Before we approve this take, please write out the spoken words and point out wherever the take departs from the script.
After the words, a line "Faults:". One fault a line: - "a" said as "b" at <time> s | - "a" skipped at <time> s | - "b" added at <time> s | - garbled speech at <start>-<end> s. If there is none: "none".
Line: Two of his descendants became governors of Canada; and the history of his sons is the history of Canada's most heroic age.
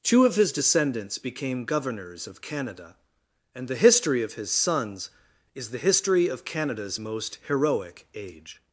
Two of his descendants became governors of Canada; and the history of his sons is the history of Canada's most heroic age.
Faults:
none